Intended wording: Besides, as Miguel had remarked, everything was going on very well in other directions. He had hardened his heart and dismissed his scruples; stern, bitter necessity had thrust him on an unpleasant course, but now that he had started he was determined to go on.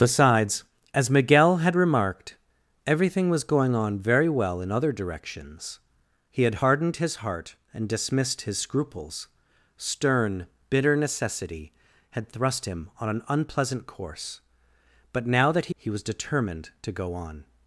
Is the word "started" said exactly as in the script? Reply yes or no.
no